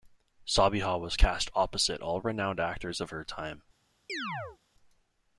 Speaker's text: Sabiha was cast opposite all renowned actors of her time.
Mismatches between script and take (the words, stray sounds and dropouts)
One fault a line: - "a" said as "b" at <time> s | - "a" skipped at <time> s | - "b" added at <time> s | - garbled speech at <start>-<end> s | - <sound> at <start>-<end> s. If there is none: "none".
- chirp at 4.1-4.6 s